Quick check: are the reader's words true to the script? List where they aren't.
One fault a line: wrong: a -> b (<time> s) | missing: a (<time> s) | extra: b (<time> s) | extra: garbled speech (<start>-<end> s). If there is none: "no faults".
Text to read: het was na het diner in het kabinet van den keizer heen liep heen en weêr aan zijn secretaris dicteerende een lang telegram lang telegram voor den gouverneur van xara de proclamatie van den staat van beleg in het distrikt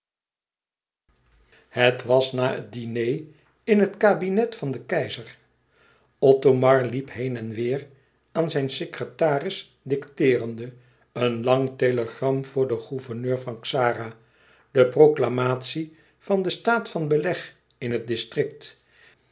wrong: heen -> othomar (6.2 s)
missing: lang telegram (12.4 s)